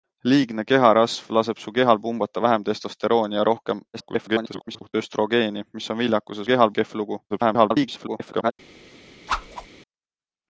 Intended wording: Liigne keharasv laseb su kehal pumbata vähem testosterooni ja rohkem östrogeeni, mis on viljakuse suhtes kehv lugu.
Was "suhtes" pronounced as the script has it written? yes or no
no